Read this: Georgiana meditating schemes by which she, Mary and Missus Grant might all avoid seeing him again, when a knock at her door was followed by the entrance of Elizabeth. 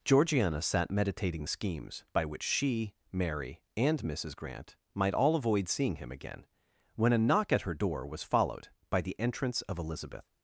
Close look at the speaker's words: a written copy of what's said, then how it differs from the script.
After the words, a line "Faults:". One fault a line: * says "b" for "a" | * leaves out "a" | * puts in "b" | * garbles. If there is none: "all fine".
Georgiana sat meditating schemes by which she, Mary and Missus Grant might all avoid seeing him again, when a knock at her door was followed by the entrance of Elizabeth.
Faults:
* puts in "sat"